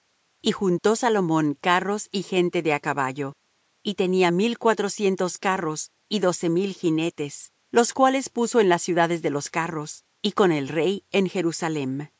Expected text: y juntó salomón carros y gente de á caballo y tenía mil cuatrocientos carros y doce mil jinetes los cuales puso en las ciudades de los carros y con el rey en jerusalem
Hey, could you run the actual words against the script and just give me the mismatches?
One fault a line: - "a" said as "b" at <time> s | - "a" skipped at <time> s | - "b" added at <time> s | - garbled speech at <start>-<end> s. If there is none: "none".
none